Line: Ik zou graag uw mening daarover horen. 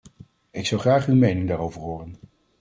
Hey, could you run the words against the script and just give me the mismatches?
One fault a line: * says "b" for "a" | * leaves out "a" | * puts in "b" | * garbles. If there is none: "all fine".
all fine